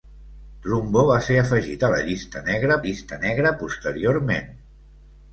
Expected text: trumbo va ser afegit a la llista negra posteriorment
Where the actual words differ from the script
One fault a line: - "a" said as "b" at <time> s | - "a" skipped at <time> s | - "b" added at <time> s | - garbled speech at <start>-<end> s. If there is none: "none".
- "llista negra" added at 2.8 s